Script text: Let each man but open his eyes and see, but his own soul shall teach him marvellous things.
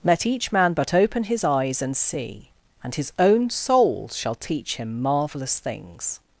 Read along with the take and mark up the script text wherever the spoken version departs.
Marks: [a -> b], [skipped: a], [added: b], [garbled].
Let each man but open his eyes and see, [but -> and] his own soul shall teach him marvellous things.